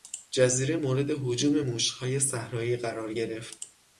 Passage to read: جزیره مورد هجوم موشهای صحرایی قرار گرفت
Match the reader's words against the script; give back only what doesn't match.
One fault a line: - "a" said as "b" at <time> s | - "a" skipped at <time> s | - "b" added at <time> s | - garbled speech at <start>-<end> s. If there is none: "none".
none